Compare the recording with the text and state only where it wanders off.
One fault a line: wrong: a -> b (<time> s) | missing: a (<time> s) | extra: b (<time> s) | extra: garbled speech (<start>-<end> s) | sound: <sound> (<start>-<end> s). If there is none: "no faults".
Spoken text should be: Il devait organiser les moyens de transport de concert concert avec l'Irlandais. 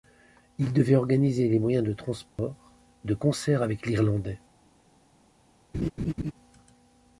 sound: dropout (2.3-2.4 s)
missing: concert (3.6 s)
sound: laugh (5.7-6.3 s)